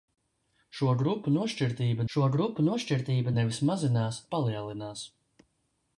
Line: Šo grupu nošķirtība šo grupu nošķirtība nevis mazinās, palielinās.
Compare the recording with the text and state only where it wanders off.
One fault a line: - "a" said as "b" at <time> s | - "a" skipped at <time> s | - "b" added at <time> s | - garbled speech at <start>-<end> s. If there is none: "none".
none